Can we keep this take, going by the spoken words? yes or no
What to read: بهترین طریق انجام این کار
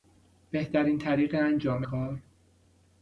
no